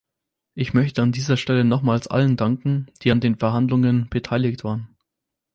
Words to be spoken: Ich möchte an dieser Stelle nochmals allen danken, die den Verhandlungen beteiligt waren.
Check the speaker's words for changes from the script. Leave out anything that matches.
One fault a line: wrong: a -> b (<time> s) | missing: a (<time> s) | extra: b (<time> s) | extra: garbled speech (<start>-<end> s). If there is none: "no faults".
extra: an (3.1 s)